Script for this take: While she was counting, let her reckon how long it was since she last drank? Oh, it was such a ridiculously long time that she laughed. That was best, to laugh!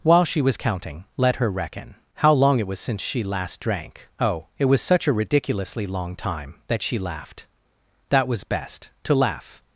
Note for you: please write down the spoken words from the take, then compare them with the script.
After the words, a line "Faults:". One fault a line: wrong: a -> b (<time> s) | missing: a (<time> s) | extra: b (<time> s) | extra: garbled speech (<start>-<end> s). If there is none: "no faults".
While she was counting, let her reckon how long it was since she last drank? Oh, it was such a ridiculously long time that she laughed. That was best, to laugh!
Faults:
no faults